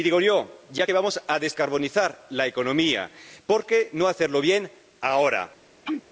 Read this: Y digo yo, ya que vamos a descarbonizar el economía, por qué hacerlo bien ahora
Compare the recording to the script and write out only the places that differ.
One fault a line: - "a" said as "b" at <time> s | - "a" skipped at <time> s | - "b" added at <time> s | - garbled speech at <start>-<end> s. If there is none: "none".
- "el" said as "la" at 2.3 s
- "no" added at 3.9 s